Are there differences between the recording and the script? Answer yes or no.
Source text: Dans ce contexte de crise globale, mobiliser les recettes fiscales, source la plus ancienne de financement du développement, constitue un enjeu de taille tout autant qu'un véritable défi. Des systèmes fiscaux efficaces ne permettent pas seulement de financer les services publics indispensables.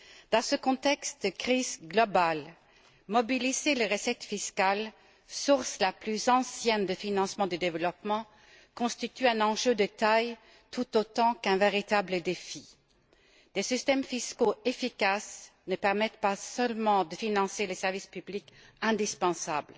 no